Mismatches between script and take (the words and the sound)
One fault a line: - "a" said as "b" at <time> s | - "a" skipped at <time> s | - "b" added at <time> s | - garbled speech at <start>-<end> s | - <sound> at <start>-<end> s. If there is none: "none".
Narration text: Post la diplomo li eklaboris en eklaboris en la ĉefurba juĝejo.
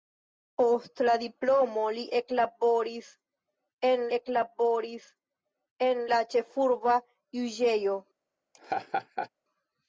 - laugh at 8.5-9.3 s